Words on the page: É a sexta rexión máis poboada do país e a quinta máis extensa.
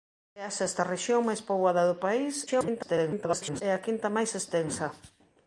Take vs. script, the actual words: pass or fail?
fail